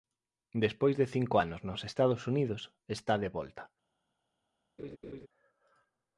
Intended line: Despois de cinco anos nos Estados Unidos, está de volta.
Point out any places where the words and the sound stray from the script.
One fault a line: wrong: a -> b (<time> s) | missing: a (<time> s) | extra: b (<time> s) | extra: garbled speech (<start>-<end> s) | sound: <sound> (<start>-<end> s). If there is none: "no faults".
sound: laugh (4.8-5.3 s)